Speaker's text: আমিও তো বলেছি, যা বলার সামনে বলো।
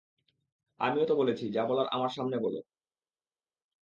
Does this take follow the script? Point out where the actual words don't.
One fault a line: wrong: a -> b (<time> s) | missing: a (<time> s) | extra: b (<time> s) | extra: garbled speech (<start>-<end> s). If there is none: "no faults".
extra: আমার (1.9 s)